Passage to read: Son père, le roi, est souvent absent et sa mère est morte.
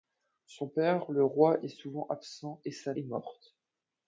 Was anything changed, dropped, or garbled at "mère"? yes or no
yes